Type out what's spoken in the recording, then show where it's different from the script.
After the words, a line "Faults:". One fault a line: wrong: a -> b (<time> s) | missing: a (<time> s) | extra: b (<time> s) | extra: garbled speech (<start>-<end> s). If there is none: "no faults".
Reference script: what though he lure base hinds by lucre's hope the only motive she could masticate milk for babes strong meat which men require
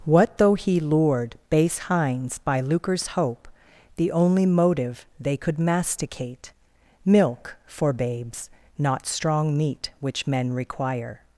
what though he lured base hinds by lucre's hope the only motive they could masticate milk for babes not strong meat which men require
Faults:
wrong: lure -> lured (0.8 s)
wrong: she -> they (5.2 s)
extra: not (8.8 s)